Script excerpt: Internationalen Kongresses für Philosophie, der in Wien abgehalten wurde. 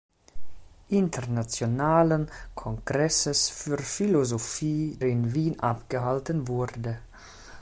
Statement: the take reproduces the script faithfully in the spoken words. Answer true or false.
false